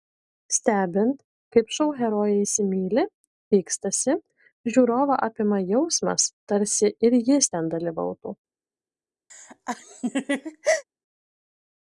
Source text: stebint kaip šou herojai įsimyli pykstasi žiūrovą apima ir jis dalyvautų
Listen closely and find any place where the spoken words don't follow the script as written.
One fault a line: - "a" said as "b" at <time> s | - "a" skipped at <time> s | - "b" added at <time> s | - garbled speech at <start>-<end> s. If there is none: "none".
- "jausmas tarsi" added at 5.7 s
- "ten" added at 7.6 s